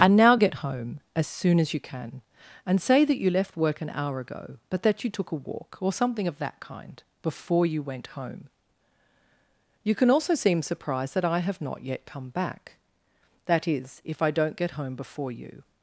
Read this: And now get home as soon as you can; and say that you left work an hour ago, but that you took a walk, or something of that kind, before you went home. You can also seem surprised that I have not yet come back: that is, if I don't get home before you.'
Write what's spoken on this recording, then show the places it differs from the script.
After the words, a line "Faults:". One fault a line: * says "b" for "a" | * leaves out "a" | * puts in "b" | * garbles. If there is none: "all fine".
And now get home as soon as you can; and say that you left work an hour ago, but that you took a walk, or something of that kind, before you went home. You can also seem surprised that I have not yet come back: that is, if I don't get home before you.'
Faults:
all fine